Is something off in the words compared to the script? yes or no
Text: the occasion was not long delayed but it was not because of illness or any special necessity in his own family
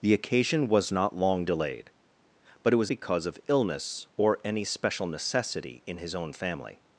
yes